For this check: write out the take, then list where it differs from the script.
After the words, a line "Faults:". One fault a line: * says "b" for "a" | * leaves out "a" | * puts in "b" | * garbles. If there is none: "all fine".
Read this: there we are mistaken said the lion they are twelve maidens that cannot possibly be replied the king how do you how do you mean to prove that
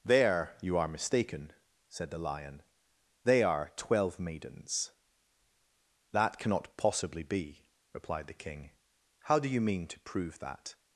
there you are mistaken said the lion they are twelve maidens that cannot possibly be replied the king how do you mean to prove that
Faults:
* says "you" for "we"
* leaves out "how do you"